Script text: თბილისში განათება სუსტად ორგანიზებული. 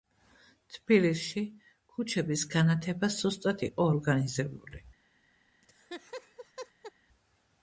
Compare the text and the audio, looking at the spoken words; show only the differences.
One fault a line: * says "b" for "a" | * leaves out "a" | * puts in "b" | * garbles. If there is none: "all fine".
* puts in "ქუჩების"
* puts in "იყო"